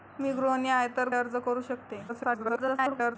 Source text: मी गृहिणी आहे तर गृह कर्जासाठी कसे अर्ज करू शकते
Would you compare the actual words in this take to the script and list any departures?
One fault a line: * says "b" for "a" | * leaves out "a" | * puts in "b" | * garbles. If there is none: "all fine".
* leaves out "गृह कर्जासाठी कसे"
* garbles